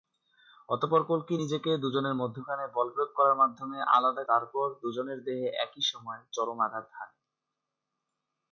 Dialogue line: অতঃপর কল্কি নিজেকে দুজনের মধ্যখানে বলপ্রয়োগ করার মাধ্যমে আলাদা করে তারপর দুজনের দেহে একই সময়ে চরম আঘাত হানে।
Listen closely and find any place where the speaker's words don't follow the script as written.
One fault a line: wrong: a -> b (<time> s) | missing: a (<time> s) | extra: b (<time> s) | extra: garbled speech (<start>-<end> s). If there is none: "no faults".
missing: করে (4.2 s)